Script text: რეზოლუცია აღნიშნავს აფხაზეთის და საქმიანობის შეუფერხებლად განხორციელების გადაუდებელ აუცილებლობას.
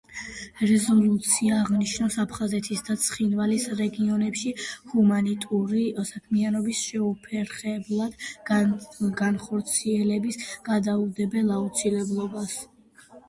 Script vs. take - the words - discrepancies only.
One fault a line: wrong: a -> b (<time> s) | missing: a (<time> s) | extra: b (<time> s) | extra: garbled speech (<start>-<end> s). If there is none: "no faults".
extra: ცხინვალის რეგიონებში ჰუმანიტარული (3.0 s)